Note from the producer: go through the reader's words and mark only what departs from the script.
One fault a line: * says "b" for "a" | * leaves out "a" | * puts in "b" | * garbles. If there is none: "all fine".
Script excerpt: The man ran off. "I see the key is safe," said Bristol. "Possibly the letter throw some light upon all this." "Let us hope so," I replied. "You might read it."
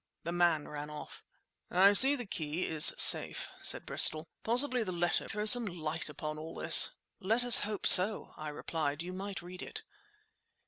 all fine